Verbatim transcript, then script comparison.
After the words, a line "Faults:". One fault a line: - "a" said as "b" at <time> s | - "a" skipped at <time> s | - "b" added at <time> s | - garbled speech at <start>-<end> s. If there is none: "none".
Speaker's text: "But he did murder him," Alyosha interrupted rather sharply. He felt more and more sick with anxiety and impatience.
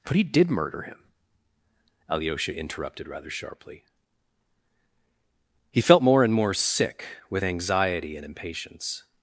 "But he did murder him," Alyosha interrupted rather sharply. He felt more and more sick with anxiety and impatience.
Faults:
none